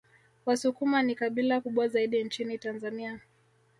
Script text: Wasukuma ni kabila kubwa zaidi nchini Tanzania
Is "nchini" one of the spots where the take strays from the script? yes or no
no